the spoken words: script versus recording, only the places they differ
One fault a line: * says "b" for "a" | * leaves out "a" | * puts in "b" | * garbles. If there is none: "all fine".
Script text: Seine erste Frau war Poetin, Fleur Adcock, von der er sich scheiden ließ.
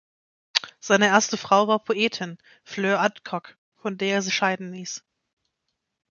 all fine